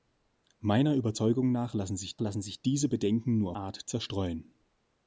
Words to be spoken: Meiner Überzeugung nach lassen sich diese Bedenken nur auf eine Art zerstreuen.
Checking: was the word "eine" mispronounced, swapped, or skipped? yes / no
yes